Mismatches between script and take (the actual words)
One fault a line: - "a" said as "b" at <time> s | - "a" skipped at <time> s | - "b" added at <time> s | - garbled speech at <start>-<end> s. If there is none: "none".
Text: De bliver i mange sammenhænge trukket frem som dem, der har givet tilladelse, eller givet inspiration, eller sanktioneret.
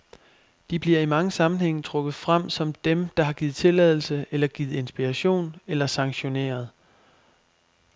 none